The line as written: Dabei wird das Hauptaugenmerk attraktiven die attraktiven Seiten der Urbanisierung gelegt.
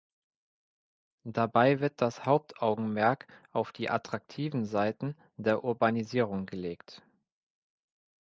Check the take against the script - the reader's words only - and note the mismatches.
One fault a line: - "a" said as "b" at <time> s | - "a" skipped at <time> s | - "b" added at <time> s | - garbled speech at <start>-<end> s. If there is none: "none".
- "attraktiven" said as "auf" at 3.5 s